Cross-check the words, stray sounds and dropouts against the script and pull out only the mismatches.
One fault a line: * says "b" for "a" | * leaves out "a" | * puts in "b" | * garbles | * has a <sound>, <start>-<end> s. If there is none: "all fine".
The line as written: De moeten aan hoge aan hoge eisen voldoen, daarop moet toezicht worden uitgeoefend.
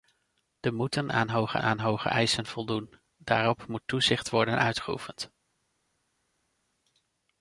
all fine